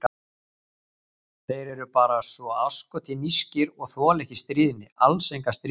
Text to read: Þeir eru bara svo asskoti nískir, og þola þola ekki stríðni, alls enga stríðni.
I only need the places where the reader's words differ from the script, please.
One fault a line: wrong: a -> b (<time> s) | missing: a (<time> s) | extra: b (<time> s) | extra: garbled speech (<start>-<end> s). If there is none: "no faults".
missing: þola (4.3 s)